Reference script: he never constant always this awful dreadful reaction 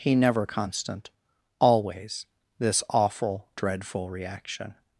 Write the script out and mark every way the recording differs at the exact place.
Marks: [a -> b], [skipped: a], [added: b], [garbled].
he never constant always this awful dreadful reaction